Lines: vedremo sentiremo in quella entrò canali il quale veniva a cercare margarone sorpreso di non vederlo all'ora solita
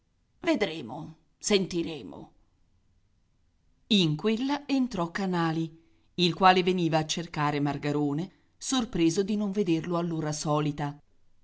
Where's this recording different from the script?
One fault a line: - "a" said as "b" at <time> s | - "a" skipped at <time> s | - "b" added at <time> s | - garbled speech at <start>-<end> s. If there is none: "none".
none